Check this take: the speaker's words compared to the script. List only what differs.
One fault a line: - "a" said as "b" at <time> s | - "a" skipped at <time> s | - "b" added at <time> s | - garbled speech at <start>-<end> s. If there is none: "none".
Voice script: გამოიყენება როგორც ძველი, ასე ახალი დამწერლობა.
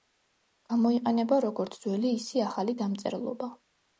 - "ასე" said as "ისე" at 2.2 s